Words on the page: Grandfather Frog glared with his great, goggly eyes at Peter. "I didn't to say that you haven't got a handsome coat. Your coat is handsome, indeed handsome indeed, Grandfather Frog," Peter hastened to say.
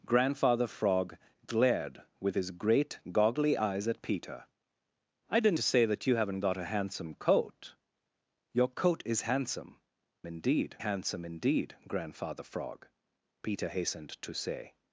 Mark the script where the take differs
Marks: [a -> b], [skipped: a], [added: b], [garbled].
Grandfather Frog glared with his great, goggly eyes at Peter. "I didn't to say that you haven't got a handsome coat. Your coat is handsome, indeed handsome indeed, Grandfather Frog," Peter hastened to say.